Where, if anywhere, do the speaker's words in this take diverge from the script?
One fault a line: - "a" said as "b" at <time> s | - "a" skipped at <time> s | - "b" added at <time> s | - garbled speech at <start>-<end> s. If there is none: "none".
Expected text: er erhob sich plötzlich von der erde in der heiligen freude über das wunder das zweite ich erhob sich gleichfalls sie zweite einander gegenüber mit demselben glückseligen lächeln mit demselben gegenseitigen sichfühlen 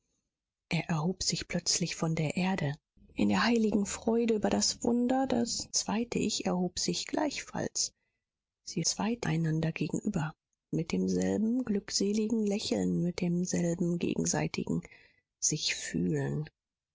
none